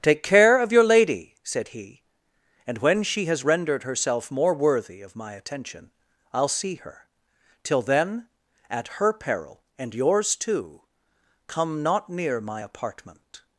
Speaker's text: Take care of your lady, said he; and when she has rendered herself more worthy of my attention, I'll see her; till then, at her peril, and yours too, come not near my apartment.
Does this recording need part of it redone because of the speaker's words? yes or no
no